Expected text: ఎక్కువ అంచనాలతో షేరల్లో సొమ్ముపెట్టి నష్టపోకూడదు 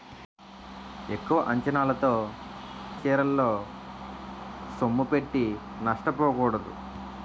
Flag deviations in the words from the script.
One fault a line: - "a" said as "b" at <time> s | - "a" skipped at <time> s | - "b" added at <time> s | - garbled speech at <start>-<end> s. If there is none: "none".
none